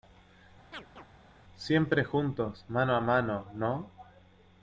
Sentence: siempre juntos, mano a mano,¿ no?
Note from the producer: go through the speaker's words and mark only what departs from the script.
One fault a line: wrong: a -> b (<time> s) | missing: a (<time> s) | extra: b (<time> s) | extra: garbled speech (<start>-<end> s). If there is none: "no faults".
no faults